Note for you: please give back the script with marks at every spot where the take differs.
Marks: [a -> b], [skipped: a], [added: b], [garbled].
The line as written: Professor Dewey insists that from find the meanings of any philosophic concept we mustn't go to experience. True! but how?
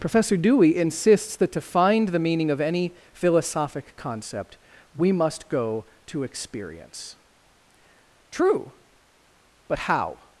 Professor Dewey insists that [from -> to] find the [meanings -> meaning] of any philosophic concept we [mustn't -> must] go to experience. True! but how?